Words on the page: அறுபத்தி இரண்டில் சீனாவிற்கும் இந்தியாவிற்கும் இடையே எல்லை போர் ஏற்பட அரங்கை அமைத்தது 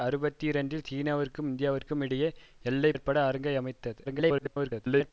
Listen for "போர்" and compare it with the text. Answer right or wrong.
wrong